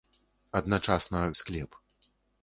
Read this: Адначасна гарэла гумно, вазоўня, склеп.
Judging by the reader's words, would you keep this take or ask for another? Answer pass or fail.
fail